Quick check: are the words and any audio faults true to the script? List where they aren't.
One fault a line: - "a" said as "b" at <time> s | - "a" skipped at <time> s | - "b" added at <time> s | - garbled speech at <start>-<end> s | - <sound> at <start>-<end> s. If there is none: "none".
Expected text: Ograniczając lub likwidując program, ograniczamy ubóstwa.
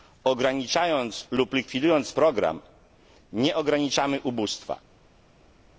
- "nie" added at 3.3 s